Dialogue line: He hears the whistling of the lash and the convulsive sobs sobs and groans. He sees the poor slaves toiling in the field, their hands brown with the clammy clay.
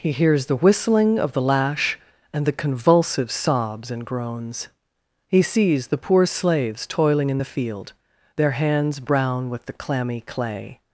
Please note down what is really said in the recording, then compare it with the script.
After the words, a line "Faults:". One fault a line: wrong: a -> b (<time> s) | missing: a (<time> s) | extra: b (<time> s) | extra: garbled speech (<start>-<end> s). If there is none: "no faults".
He hears the whistling of the lash and the convulsive sobs and groans. He sees the poor slaves toiling in the field, their hands brown with the clammy clay.
Faults:
missing: sobs (3.9 s)